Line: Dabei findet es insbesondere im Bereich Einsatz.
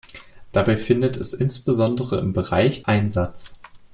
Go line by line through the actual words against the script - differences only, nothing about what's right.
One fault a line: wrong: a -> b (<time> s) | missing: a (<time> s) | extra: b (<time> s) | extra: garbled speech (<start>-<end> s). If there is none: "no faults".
no faults